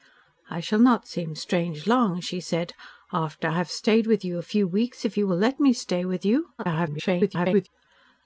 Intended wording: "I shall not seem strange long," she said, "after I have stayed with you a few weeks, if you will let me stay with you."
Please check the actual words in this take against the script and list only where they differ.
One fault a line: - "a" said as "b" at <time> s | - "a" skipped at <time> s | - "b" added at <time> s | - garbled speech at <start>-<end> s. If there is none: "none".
- garbled speech at 6.6-7.7 s